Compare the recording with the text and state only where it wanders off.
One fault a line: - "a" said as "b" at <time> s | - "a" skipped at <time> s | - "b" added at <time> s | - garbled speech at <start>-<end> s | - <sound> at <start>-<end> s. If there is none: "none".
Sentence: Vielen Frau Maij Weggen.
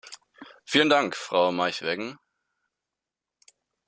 - "Dank" added at 0.9 s